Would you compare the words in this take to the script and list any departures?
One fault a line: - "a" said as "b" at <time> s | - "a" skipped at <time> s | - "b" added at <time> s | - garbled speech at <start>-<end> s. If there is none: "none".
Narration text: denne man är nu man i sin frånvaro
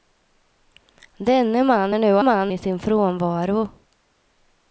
none